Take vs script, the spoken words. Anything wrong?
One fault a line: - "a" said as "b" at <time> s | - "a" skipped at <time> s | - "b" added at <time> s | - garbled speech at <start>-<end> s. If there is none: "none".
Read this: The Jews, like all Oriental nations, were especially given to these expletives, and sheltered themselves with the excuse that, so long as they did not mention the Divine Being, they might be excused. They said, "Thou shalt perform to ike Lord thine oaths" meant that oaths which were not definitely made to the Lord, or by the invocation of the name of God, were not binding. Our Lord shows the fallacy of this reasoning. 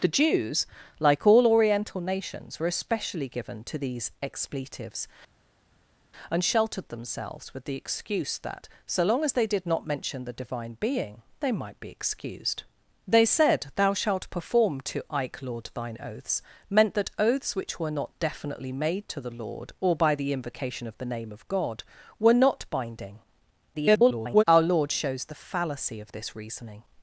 - garbled speech at 23.7-24.4 s